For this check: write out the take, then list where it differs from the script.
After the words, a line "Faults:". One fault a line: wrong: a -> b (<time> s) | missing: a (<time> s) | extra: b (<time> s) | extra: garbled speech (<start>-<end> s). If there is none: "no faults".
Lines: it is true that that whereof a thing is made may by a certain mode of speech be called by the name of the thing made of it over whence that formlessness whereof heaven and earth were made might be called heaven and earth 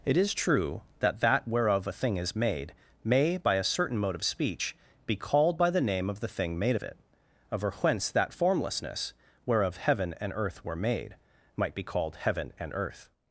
it is true that that whereof a thing is made may by a certain mode of speech be called by the name of the thing made of it over whence that formlessness whereof heaven and earth were made might be called heaven and earth
Faults:
no faults